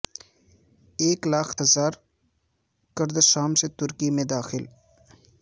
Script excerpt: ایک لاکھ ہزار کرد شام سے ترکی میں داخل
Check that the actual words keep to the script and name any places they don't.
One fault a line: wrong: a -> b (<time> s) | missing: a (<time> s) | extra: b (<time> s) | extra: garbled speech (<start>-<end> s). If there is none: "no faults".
no faults